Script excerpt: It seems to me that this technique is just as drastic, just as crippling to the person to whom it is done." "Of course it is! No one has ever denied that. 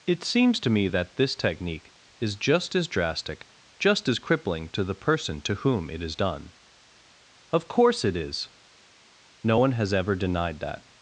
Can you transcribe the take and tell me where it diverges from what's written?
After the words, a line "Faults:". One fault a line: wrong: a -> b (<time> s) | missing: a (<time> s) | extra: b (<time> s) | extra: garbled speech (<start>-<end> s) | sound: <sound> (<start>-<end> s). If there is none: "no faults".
It seems to me that this technique is just as drastic, just as crippling to the person to whom it is done." "Of course it is! No one has ever denied that.
Faults:
no faults